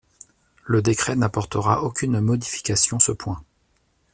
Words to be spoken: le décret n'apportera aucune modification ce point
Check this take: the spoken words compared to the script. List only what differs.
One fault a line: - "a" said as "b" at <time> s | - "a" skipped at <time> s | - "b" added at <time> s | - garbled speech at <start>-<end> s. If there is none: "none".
none